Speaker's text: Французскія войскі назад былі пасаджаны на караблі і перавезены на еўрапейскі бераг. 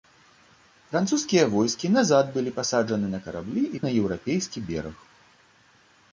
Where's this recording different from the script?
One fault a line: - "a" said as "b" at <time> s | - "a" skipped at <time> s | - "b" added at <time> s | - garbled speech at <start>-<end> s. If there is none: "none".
- "перавезены" skipped at 3.8 s